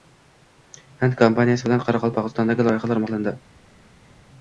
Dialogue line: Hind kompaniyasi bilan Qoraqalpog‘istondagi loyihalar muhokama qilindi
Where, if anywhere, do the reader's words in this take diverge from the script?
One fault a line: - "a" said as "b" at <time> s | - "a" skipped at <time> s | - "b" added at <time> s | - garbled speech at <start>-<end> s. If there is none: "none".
- "muhokama" skipped at 3.0 s